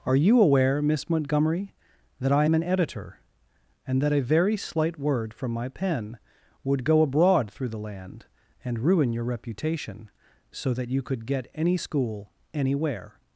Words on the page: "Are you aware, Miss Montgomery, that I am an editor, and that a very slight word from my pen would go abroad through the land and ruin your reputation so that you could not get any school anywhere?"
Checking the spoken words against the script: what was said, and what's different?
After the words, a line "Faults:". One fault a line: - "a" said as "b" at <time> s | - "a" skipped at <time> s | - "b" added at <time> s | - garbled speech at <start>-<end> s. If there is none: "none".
"Are you aware, Miss Montgomery, that I am an editor, and that a very slight word from my pen would go abroad through the land and ruin your reputation so that you could get any school anywhere?"
Faults:
- "not" skipped at 11.2 s